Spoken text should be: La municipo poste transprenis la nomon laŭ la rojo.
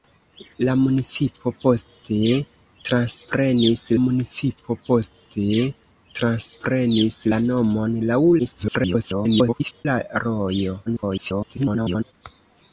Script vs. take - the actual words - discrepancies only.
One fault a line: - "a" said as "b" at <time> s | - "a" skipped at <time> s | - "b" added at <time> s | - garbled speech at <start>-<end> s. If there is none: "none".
- "municipo poste transprenis" added at 4.0 s
- garbled speech at 8.4-9.9 s
- garbled speech at 10.9-12.1 s